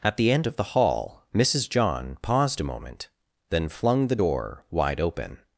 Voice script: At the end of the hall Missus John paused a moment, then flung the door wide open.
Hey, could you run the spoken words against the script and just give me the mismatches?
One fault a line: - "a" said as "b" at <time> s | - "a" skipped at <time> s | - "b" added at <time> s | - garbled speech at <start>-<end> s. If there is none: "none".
none